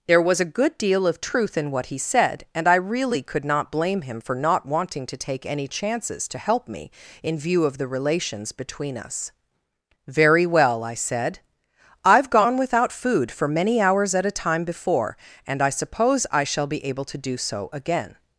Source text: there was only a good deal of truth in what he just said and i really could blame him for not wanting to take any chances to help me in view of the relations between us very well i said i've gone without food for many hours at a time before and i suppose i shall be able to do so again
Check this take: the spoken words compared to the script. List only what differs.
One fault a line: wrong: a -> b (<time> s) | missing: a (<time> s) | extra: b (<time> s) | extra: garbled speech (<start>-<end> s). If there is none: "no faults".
missing: only (0.4 s)
missing: just (2.0 s)
extra: not (3.5 s)